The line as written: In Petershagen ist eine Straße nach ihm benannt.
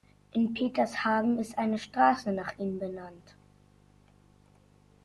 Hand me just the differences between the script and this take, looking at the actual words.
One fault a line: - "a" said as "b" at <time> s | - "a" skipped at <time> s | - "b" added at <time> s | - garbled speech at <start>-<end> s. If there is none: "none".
none